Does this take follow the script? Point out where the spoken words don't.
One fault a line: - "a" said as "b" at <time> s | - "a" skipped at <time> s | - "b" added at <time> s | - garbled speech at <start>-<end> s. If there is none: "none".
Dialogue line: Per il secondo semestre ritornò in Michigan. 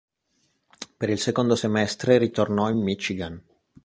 none